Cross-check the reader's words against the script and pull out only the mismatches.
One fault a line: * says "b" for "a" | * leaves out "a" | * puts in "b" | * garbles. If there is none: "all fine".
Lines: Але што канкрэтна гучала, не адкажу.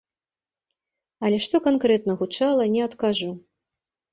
all fine